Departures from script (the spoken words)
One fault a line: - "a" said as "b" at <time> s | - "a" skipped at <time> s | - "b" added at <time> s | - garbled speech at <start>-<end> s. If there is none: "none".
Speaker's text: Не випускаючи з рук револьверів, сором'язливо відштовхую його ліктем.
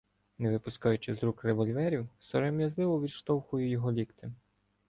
none